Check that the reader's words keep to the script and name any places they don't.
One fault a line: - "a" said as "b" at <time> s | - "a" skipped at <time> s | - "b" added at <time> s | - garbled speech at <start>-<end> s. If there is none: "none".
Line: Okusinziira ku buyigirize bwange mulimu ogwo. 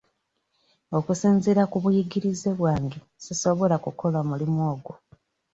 - "sisobola kukola" added at 3.2 s